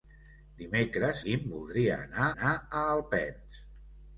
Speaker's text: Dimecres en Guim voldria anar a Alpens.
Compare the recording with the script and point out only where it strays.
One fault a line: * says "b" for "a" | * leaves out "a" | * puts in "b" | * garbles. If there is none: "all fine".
* leaves out "en"
* puts in "anar"